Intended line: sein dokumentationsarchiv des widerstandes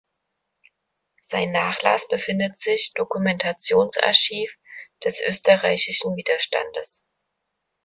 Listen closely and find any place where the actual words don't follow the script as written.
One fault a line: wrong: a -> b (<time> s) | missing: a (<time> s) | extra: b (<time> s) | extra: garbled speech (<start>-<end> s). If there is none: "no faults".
extra: nachlass befindet sich (1.5 s)
extra: österreichischen (5.2 s)